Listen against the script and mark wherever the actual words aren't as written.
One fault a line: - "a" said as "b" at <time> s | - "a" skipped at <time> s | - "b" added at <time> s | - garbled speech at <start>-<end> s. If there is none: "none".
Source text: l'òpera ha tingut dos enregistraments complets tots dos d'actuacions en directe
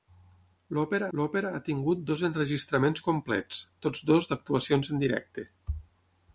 - "l'òpera" added at 1.2 s